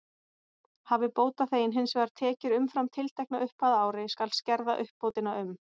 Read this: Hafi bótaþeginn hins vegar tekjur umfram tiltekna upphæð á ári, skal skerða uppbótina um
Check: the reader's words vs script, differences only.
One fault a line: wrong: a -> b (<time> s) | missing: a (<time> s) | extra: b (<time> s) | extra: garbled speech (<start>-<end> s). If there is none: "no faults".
no faults